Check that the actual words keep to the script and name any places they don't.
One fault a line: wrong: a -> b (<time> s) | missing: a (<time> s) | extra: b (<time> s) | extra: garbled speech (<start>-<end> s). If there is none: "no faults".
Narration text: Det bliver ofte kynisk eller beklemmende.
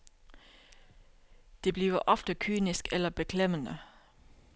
no faults